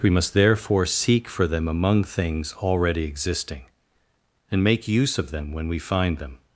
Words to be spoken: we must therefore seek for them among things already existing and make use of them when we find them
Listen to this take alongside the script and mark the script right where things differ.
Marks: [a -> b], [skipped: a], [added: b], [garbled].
we must therefore seek for them among things already existing and make use of them when we find them